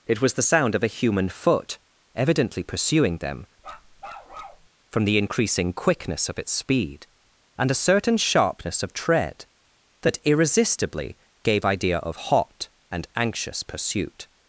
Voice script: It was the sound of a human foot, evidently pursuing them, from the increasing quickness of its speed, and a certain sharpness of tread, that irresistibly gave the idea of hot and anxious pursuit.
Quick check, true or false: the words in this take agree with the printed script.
false